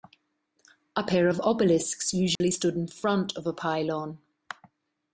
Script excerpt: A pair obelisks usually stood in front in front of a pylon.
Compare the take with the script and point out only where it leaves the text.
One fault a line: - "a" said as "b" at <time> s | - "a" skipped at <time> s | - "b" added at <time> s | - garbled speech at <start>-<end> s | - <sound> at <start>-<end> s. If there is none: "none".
- "of" added at 1.3 s
- dropout at 2.4-2.4 s
- "in front" skipped at 3.3 s